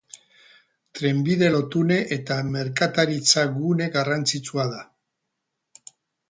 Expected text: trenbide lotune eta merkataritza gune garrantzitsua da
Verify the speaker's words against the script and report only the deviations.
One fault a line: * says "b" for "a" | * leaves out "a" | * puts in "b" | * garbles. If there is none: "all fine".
all fine